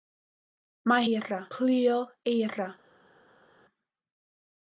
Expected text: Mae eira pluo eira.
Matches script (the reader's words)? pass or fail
pass